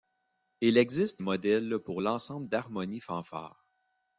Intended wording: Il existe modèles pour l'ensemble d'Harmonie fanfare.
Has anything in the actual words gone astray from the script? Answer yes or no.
no